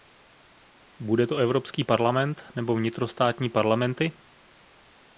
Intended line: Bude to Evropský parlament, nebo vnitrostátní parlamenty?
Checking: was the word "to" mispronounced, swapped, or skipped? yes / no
no